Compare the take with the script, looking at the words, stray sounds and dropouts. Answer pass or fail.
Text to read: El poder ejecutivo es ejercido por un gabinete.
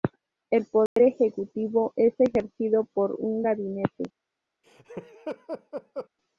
fail